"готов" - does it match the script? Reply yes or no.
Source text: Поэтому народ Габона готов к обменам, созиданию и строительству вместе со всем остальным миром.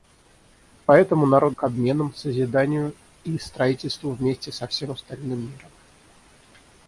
no